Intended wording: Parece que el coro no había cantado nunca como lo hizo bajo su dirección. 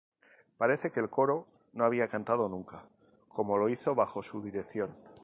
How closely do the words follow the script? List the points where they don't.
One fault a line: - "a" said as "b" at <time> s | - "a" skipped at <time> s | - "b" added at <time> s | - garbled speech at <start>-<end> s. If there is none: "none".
none